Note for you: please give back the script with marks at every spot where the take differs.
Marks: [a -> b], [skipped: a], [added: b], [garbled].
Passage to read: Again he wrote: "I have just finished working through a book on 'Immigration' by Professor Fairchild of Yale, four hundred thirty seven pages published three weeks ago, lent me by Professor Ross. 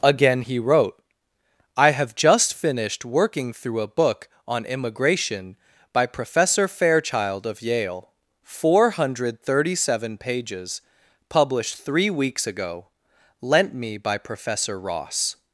Again he wrote: "I have just finished working through a book on 'Immigration' by Professor Fairchild of Yale, four hundred thirty seven pages published three weeks ago, lent me by Professor Ross.